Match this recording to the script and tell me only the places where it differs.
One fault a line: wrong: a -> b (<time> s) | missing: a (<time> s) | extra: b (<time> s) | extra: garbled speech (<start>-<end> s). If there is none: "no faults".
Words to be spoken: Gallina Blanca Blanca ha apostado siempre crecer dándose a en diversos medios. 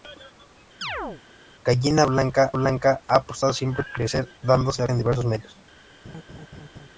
no faults